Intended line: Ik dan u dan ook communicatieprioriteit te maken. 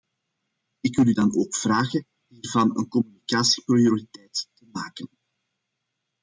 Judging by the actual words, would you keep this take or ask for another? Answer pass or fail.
fail